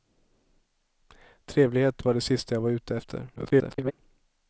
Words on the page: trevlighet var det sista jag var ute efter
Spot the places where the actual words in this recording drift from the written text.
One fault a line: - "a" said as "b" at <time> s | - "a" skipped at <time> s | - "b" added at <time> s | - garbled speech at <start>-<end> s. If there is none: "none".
- garbled speech at 3.4-3.9 s